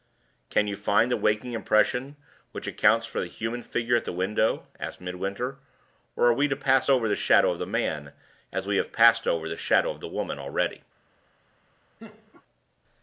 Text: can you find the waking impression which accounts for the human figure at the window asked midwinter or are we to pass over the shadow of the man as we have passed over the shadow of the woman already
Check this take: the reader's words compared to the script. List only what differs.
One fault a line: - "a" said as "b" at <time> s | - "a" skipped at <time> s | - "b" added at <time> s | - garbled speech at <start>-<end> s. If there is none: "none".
none